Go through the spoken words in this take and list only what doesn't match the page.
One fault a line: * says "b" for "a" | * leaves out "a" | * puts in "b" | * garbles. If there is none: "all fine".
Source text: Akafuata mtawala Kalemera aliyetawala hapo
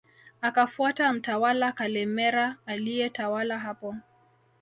all fine